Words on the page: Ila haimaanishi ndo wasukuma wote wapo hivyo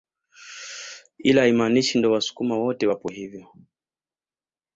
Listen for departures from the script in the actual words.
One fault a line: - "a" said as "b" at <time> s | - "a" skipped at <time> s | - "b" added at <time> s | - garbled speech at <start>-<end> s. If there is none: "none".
none